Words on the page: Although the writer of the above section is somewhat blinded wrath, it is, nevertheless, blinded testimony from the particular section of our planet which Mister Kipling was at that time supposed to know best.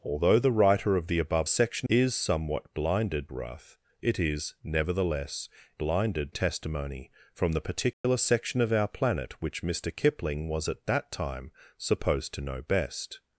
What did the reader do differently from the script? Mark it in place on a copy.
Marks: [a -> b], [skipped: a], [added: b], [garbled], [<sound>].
Although the writer of the above section is somewhat blinded wrath, it is, nevertheless, blinded testimony from the particular [dropout] section of our planet which Mister Kipling was at that time supposed to know best.